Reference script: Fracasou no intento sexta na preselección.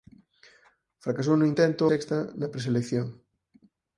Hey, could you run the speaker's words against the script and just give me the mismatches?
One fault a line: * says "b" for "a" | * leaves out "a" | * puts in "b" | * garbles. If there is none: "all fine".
all fine